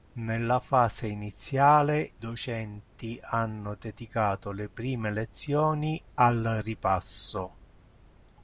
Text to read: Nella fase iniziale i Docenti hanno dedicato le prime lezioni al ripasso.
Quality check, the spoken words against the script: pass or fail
fail